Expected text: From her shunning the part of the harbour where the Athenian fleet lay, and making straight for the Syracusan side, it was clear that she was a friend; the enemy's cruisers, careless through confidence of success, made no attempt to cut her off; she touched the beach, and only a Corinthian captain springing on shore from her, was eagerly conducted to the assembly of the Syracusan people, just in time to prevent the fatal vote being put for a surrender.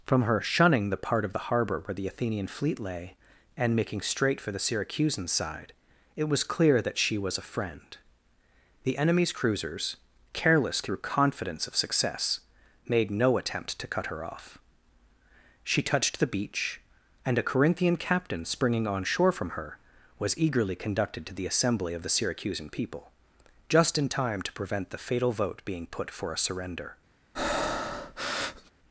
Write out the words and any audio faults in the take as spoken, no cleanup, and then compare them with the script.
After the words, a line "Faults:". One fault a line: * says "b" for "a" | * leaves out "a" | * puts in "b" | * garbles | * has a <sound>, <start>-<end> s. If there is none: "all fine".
From her shunning the part of the harbour where the Athenian fleet lay, and making straight for the Syracusan side, it was clear that she was a friend; the enemy's cruisers, careless through confidence of success, made no attempt to cut her off; she touched the beach, and a Corinthian captain springing on shore from her, was eagerly conducted to the assembly of the Syracusan people, just in time to prevent the fatal vote being put for a surrender.
Faults:
* leaves out "only"
* has a breath, 27.3-28.7 s